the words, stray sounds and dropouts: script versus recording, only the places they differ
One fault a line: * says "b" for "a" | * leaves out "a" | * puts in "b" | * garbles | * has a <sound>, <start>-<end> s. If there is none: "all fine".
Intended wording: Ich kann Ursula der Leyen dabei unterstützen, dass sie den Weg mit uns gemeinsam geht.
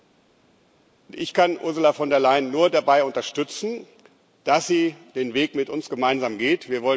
* puts in "von"
* puts in "nur"